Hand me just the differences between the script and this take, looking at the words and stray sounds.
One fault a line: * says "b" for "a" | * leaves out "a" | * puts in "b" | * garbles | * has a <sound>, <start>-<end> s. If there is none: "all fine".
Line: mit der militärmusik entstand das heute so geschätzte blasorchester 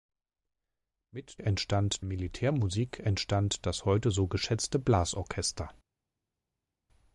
* says "entstand" for "der"